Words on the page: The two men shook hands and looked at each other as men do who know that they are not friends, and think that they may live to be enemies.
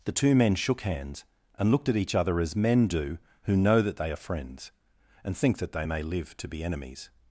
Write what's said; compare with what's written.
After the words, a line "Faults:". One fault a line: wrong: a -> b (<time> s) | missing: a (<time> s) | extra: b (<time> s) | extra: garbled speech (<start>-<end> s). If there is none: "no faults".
The two men shook hands and looked at each other as men do who know that they are friends, and think that they may live to be enemies.
Faults:
missing: not (4.2 s)